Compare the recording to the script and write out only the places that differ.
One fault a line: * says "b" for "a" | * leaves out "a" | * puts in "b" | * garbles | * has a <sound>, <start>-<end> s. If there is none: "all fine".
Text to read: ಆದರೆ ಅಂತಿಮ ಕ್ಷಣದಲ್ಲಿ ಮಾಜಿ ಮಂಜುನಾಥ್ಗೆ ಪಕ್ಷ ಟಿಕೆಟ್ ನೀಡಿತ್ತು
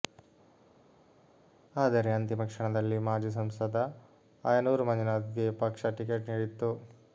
* puts in "ಸಂಸದ ಆಯನೂರು"